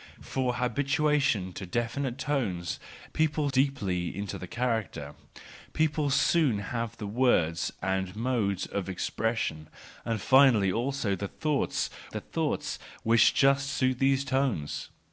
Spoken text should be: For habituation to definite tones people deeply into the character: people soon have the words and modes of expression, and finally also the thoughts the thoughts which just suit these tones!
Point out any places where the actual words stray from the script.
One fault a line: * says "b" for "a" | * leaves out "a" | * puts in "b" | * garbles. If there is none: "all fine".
all fine